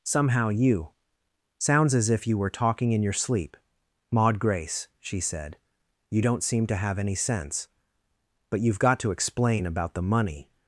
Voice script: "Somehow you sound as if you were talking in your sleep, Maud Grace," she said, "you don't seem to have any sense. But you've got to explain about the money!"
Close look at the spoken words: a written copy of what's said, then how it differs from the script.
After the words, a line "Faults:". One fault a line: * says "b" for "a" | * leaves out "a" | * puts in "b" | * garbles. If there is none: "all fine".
"Somehow you sounds as if you were talking in your sleep, Maud Grace," she said, "you don't seem to have any sense. But you've got to explain about the money!"
Faults:
* says "sounds" for "sound"